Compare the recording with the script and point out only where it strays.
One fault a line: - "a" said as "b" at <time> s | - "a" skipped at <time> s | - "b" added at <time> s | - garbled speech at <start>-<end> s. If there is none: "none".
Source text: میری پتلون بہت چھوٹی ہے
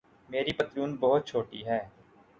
none